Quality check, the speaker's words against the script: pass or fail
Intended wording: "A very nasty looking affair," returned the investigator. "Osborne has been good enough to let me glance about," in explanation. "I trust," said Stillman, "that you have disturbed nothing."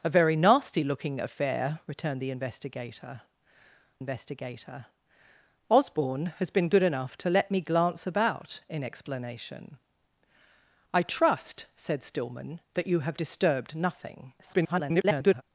fail